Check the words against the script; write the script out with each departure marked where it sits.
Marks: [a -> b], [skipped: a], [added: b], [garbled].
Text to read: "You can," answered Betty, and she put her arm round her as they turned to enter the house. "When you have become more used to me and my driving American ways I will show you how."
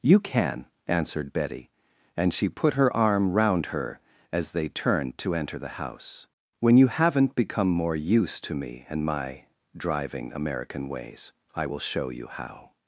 "You can," answered Betty, and she put her arm round her as they turned to enter the house. "When you [have -> haven't] become more used to me and my driving American ways I will show you how."